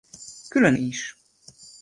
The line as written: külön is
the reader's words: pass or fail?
pass